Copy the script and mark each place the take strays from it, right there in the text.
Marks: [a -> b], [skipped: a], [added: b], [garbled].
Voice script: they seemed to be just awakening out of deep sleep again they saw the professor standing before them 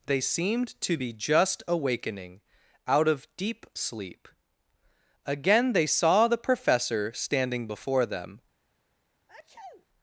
they seemed to be just awakening out of deep sleep again they saw the professor standing before them